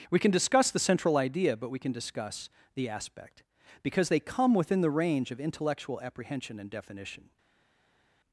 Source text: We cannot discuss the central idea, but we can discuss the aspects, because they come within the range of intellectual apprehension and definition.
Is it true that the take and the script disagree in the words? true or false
true